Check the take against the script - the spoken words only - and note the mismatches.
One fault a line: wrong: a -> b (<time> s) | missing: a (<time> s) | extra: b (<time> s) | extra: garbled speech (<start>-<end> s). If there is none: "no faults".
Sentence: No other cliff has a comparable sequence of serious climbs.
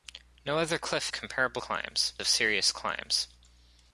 missing: has (1.1 s)
wrong: sequence -> climbs (1.6 s)